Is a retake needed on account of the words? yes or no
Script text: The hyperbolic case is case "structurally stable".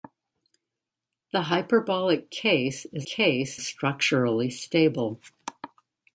no